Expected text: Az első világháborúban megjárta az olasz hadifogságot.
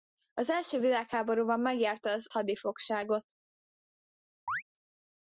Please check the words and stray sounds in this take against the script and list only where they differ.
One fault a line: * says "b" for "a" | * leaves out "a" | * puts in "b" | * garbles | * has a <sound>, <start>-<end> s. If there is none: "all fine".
* leaves out "olasz"
* has a chirp, 4.5-4.6 s